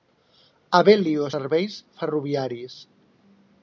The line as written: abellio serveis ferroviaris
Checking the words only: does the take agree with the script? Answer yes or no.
yes